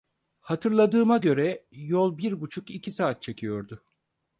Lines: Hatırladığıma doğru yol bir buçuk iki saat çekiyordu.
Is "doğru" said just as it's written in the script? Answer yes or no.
no